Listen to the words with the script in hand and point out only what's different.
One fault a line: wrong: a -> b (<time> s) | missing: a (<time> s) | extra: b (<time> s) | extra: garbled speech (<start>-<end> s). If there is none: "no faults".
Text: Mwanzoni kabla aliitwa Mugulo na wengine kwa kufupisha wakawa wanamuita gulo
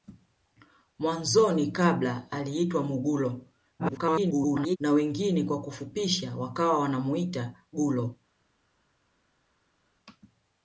extra: garbled speech (3.8-4.8 s)